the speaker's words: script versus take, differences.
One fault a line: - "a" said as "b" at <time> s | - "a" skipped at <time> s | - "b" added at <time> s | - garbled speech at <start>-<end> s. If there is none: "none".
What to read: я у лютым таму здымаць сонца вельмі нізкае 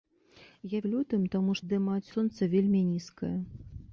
none